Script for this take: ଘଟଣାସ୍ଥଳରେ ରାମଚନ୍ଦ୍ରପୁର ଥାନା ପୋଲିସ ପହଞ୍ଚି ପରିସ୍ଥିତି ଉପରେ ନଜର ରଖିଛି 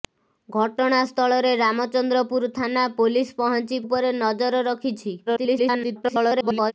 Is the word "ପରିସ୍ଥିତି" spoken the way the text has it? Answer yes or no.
no